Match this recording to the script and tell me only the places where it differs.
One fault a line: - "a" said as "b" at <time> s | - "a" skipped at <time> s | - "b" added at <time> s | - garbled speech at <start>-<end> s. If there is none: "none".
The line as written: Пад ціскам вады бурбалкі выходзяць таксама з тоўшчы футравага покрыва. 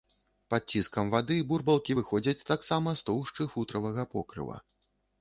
none